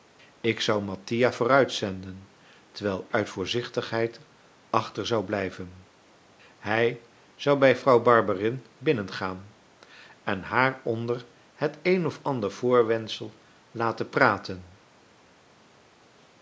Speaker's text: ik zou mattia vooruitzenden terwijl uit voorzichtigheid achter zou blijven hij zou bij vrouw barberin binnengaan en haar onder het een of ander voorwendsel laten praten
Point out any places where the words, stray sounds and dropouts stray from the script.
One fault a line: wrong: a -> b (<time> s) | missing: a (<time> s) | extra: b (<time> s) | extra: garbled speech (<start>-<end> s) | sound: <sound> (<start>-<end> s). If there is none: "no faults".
no faults